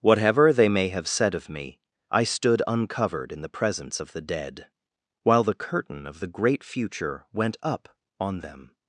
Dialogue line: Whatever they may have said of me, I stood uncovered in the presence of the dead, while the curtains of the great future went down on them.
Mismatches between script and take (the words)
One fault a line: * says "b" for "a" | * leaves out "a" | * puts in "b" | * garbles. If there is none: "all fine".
* says "curtain" for "curtains"
* says "up" for "down"